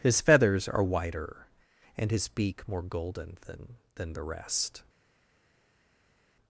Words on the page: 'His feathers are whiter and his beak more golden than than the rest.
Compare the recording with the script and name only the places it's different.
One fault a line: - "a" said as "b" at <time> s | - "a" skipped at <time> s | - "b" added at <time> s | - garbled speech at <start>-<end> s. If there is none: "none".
none